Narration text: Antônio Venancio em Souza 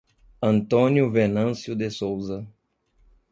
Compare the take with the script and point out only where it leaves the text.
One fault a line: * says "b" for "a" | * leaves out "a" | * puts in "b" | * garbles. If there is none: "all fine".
* says "de" for "em"